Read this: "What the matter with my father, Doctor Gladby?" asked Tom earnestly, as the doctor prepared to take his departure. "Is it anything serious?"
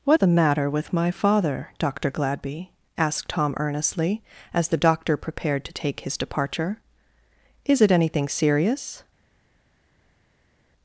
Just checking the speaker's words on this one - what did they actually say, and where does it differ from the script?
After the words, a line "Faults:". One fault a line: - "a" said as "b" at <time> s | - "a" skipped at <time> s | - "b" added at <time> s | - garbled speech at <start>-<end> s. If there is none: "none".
"What the matter with my father, Doctor Gladby?" asked Tom earnestly, as the doctor prepared to take his departure. "Is it anything serious?"
Faults:
none